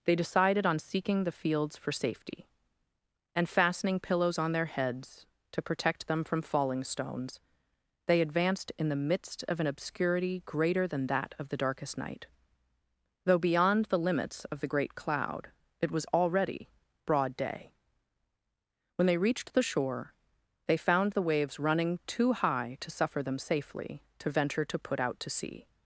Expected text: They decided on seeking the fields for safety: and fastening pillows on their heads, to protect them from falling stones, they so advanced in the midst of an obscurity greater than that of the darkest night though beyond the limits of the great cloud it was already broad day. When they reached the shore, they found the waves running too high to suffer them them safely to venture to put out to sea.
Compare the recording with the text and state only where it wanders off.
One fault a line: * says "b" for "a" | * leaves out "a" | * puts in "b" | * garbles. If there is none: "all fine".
* leaves out "so"
* leaves out "them"